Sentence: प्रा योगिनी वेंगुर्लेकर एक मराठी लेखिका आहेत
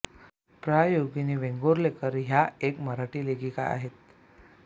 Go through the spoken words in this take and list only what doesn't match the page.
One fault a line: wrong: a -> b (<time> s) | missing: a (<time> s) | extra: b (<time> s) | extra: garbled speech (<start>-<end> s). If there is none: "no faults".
extra: ह्या (2.2 s)